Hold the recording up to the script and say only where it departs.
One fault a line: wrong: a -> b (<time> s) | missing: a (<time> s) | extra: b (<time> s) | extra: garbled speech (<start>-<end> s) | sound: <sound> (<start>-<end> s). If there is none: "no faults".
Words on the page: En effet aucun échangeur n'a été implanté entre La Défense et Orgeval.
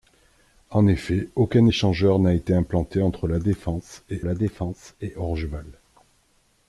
extra: La Défense et (4.2 s)